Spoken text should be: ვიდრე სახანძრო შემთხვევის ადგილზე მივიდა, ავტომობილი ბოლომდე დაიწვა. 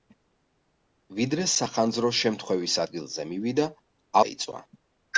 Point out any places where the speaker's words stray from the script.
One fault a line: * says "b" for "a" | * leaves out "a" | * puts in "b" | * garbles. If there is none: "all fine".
* leaves out "ავტომობილი ბოლომდე"